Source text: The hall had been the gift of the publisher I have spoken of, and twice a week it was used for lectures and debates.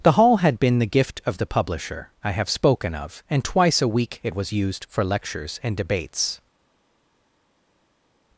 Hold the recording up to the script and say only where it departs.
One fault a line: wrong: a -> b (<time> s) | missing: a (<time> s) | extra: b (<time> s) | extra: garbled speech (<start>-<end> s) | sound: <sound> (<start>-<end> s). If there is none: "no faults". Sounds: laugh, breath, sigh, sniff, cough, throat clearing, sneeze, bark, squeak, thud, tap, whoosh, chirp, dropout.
no faults